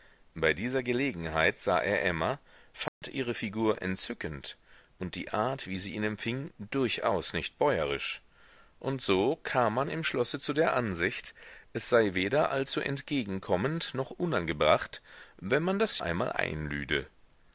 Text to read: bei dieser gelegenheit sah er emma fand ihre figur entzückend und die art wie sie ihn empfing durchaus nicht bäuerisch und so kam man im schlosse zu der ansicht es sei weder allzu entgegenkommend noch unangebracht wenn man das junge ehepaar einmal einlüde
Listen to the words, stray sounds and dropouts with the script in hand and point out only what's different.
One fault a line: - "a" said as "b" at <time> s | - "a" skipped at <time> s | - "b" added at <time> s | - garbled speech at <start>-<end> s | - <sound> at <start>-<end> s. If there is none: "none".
- dropout at 2.9-3.0 s
- "junge ehepaar" skipped at 16.0 s